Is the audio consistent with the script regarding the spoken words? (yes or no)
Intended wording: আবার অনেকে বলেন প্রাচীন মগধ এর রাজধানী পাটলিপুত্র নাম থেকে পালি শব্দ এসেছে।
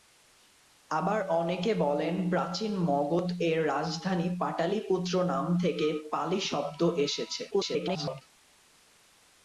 no